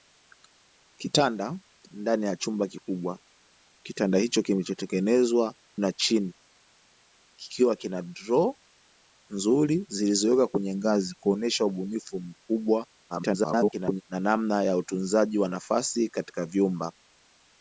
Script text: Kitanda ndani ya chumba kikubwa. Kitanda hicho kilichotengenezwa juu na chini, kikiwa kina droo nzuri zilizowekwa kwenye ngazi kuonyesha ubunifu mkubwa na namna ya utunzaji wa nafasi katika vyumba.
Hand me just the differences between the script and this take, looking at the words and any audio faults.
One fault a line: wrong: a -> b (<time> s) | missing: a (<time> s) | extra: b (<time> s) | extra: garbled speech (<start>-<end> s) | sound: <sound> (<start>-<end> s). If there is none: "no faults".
missing: juu (5.5 s)
extra: garbled speech (13.1-14.0 s)